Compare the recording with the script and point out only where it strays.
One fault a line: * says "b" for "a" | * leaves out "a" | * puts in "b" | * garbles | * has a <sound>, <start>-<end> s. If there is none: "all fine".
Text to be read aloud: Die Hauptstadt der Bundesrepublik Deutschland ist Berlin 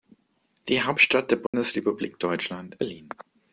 * has a dropout, 1.5-1.5 s
* leaves out "ist"